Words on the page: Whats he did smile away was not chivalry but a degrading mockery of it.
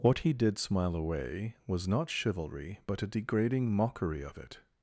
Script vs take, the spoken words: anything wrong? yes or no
yes